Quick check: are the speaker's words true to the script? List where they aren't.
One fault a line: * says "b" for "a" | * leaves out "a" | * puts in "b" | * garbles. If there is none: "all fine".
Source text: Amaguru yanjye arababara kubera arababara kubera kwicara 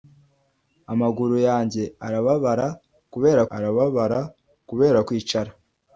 all fine